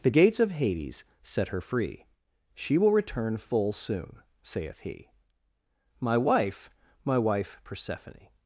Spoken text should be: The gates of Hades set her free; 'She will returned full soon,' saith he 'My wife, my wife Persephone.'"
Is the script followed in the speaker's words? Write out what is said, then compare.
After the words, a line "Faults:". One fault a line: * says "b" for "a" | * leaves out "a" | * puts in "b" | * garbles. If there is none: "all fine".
The gates of Hades set her free; 'She will return full soon,' saith he 'My wife, my wife Persephone.'"
Faults:
* says "return" for "returned"